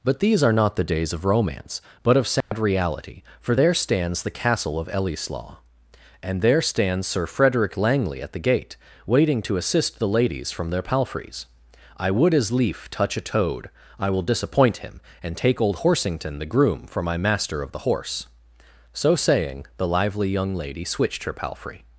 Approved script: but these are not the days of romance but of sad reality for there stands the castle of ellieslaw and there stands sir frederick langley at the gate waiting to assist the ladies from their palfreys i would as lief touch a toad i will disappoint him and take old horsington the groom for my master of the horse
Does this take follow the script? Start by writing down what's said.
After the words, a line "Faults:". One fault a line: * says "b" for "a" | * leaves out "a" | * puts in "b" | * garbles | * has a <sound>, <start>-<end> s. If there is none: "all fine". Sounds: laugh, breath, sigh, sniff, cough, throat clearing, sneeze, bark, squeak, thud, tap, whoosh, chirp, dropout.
but these are not the days of romance but of sad reality for there stands the castle of ellieslaw and there stands sir frederick langley at the gate waiting to assist the ladies from their palfreys i would as lief touch a toad i will disappoint him and take old horsington the groom for my master of the horse so saying the lively young lady switched her palfrey
Faults:
* has a dropout, 2.4-2.5 s
* puts in "so saying the lively young lady switched her palfrey"